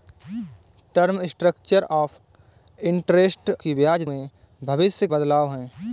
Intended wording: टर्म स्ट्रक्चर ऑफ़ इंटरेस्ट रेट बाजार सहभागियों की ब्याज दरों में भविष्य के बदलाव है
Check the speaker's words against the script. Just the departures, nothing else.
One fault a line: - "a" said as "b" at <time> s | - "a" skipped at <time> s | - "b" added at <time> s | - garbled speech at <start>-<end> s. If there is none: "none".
- "रेट बाजार सहभागियों" skipped at 3.5 s
- "दरों" skipped at 4.0 s
- "के" skipped at 5.1 s